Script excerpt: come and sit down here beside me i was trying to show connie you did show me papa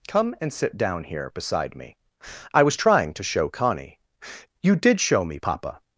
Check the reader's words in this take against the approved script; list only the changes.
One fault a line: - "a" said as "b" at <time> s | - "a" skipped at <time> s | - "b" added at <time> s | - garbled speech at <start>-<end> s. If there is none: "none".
none